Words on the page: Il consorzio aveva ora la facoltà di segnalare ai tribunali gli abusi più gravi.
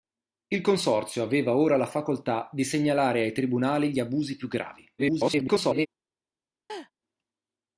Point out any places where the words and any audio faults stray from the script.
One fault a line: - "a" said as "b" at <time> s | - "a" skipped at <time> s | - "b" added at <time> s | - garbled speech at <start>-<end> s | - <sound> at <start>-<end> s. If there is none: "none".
- garbled speech at 5.0-5.9 s
- laugh at 6.7-6.9 s